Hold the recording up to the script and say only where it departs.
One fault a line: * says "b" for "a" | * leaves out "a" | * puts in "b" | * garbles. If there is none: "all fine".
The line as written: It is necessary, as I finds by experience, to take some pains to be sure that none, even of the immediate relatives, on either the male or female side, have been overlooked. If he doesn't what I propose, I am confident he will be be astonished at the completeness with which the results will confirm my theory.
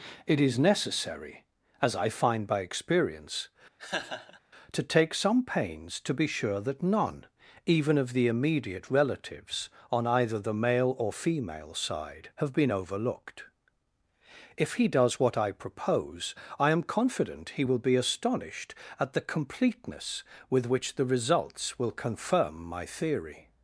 * says "find" for "finds"
* says "does" for "doesn't"
* leaves out "be"